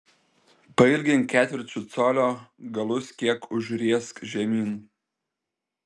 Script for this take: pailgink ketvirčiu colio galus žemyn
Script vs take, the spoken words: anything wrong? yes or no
yes